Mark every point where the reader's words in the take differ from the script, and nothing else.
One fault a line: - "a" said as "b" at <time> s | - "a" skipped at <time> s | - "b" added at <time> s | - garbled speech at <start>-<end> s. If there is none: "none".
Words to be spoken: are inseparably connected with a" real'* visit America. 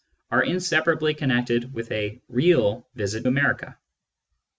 none